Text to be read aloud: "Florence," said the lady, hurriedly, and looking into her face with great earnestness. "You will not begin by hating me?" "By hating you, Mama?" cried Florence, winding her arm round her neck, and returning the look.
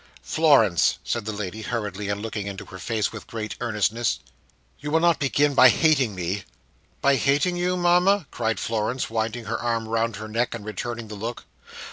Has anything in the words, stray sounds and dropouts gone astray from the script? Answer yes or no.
no